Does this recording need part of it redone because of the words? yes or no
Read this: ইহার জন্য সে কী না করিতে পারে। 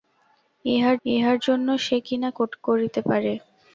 yes